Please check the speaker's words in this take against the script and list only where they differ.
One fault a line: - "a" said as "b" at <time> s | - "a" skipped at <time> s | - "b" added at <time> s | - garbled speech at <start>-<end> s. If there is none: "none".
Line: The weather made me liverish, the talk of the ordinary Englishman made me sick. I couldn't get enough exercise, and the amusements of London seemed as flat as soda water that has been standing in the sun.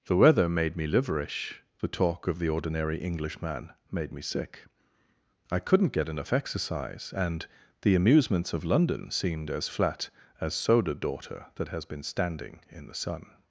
- "water" said as "daughter" at 10.9 s